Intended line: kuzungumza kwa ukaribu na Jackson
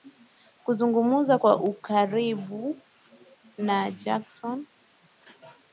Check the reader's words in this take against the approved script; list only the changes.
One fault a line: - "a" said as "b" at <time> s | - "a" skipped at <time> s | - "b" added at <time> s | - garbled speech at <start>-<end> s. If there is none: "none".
none